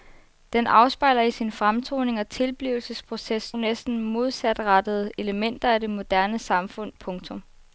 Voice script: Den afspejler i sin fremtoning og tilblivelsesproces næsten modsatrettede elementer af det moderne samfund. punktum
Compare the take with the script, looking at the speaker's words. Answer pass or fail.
pass